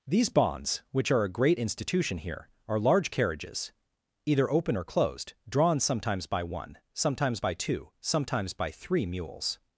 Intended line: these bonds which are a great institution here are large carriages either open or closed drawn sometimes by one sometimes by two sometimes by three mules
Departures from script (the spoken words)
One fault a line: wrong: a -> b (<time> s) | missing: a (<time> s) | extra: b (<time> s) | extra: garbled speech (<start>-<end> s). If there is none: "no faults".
no faults